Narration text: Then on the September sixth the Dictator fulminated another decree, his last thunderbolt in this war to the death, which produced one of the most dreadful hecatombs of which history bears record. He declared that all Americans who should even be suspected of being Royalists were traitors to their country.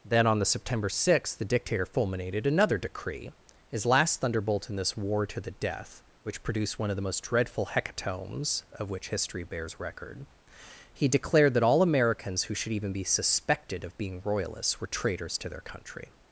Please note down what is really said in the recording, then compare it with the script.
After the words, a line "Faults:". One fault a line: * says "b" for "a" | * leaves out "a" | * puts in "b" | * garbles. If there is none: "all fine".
Then on the September sixth the Dictator fulminated another decree, his last thunderbolt in this war to the death, which produced one of the most dreadful hecatombs of which history bears record. He declared that all Americans who should even be suspected of being Royalists were traitors to their country.
Faults:
all fine